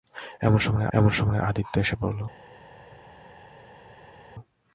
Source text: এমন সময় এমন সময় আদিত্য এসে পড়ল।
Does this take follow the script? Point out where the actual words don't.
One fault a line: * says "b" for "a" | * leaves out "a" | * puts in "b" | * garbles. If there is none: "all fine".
all fine